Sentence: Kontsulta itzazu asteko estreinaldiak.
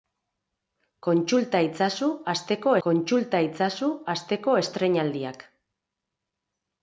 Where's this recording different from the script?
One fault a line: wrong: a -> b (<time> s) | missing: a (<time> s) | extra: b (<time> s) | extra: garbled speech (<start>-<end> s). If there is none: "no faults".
extra: kontsulta itzazu asteko (2.9 s)